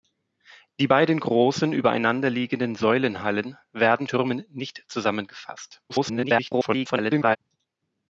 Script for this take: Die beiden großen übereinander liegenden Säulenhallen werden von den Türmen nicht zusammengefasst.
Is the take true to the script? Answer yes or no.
no